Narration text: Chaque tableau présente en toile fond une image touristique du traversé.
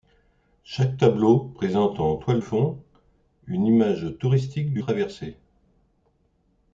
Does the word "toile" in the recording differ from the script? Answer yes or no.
no